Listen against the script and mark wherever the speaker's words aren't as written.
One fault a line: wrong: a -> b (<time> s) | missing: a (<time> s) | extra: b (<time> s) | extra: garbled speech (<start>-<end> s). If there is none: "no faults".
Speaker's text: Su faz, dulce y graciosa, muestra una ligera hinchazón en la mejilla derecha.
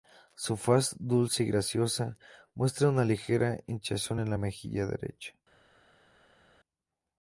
no faults